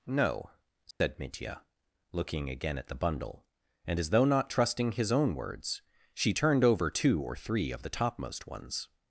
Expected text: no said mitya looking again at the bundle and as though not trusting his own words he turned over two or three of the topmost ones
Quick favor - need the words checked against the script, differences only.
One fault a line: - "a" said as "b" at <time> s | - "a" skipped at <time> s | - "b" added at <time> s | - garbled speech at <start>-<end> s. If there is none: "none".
- "he" said as "she" at 6.1 s